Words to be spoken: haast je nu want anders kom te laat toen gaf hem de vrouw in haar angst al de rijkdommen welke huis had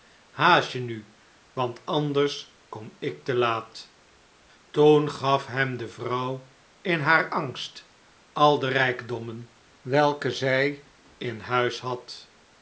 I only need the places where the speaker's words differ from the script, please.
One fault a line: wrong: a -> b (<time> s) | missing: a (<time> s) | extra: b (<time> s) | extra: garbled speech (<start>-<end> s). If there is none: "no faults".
extra: ik (3.0 s)
extra: zij in (10.3 s)